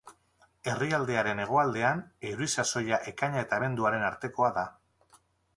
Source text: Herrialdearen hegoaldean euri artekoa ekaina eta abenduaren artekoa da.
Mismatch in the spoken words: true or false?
true